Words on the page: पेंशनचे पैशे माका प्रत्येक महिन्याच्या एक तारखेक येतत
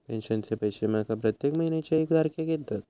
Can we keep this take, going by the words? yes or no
yes